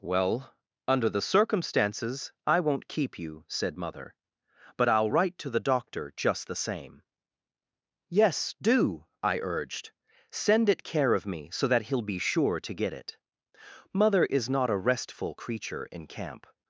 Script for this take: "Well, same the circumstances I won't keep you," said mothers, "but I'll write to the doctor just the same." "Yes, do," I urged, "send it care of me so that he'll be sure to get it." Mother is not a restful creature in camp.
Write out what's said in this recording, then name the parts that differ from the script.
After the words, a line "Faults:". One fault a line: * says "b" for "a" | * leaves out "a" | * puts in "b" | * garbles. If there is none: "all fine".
"Well, under the circumstances I won't keep you," said mother, "but I'll write to the doctor just the same." "Yes, do," I urged, "send it care of me so that he'll be sure to get it." Mother is not a restful creature in camp.
Faults:
* says "under" for "same"
* says "mother" for "mothers"